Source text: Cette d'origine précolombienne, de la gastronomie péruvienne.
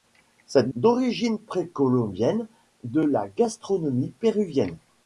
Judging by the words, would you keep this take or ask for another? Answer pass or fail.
pass